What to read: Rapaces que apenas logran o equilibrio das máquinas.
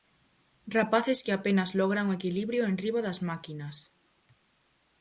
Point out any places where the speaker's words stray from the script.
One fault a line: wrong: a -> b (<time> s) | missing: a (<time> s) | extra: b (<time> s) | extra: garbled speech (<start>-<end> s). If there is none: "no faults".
extra: enriba (2.7 s)